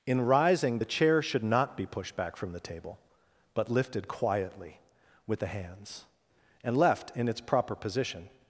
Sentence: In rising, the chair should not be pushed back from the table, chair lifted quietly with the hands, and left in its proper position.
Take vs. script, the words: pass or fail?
fail